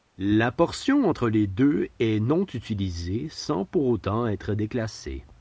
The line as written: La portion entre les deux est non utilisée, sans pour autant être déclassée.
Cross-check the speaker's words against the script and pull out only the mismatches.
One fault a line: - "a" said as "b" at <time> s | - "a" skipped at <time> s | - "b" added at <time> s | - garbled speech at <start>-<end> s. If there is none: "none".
none